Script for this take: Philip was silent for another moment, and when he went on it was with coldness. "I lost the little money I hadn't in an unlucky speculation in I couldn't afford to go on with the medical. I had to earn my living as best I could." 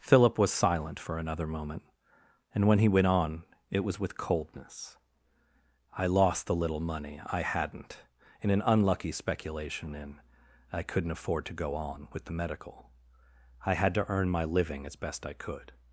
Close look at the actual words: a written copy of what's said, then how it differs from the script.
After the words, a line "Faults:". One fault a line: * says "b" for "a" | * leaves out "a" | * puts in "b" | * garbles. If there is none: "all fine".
Philip was silent for another moment, and when he went on it was with coldness. "I lost the little money I hadn't in an unlucky speculation in I couldn't afford to go on with the medical. I had to earn my living as best I could."
Faults:
all fine